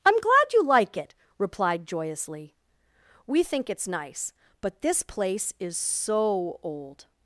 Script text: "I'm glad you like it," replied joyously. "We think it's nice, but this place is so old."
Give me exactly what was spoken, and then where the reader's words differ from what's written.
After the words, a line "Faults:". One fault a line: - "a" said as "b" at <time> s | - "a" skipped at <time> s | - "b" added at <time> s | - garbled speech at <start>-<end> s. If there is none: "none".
"I'm glad you like it," replied joyously. "We think it's nice, but this place is so old."
Faults:
none